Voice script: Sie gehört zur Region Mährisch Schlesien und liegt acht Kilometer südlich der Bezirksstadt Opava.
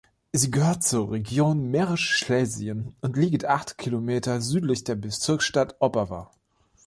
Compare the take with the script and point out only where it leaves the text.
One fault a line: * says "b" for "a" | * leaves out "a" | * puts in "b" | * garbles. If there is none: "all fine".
all fine